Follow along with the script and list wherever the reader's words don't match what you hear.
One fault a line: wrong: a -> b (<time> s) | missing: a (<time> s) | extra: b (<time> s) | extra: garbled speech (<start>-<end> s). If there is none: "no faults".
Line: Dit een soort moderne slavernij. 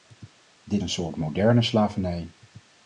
no faults